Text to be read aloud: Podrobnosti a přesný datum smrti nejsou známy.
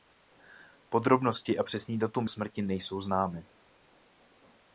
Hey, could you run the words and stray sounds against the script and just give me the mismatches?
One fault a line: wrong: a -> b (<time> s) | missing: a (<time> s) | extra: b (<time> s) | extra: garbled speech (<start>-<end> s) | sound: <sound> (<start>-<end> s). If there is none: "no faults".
no faults